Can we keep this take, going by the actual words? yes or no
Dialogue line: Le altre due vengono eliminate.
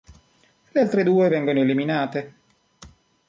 yes